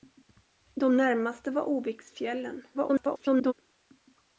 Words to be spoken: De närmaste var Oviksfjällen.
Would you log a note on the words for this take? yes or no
yes